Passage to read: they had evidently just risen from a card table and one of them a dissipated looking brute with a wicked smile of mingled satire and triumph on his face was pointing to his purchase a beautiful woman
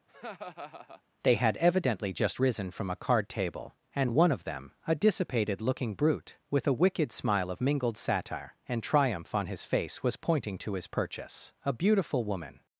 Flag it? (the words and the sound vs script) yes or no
yes